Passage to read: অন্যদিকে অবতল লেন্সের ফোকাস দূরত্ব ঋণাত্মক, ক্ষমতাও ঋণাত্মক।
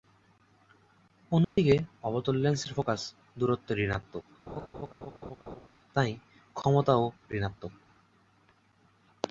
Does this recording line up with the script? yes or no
no